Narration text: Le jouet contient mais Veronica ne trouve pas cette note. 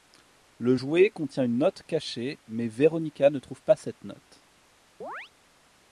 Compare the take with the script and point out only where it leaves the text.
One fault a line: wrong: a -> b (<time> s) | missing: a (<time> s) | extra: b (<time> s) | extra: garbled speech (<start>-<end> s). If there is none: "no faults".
extra: une note cachée (1.4 s)